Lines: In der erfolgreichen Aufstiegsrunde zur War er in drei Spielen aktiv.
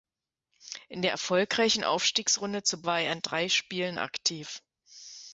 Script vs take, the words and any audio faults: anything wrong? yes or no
no